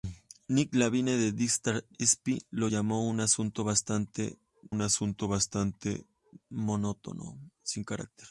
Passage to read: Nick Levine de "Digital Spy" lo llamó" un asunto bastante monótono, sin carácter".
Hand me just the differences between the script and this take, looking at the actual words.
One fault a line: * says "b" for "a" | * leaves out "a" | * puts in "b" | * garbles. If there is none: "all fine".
* puts in "un asunto bastante"